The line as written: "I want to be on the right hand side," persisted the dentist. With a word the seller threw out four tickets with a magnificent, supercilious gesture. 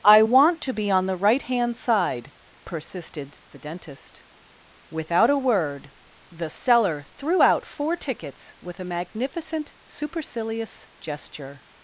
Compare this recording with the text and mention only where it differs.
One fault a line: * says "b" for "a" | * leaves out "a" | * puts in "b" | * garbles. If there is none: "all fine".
* says "Without" for "With"